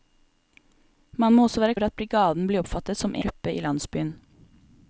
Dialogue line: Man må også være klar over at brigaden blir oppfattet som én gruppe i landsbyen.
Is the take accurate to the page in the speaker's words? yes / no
no